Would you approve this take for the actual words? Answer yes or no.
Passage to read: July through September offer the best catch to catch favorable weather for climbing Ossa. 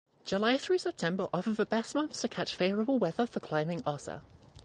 no